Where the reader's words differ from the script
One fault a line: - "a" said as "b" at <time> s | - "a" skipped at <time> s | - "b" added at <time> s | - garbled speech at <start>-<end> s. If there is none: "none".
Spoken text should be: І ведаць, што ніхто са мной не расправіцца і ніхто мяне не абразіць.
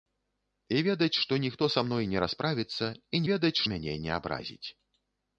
- "ніхто" said as "ведаць" at 3.3 s